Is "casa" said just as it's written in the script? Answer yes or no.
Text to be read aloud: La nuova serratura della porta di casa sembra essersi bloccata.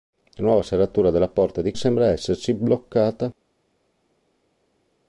no